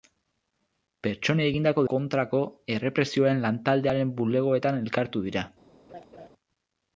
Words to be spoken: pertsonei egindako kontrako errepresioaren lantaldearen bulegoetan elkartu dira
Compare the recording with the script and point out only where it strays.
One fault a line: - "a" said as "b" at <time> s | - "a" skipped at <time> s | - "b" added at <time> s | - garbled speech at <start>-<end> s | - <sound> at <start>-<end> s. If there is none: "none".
- laugh at 5.9-6.3 s